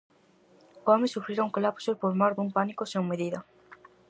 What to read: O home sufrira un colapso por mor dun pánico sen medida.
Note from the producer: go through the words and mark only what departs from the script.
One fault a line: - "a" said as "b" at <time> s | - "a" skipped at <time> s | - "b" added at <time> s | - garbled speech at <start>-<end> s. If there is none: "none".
none